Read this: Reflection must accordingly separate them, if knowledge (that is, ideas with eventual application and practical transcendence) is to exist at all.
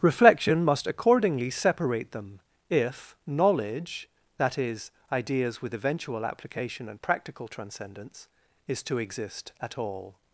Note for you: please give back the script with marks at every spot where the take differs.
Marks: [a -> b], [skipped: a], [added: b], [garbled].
Reflection must accordingly separate them, if knowledge (that is, ideas with eventual application and practical transcendence) is to exist at all.